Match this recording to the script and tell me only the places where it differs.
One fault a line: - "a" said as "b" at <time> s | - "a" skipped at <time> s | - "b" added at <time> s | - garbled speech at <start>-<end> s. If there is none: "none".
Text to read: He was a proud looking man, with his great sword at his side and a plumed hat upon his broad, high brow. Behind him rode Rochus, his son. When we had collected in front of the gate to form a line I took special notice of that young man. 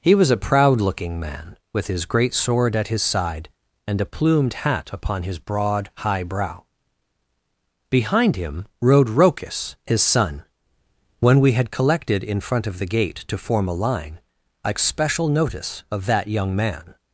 - "took" skipped at 14.7 s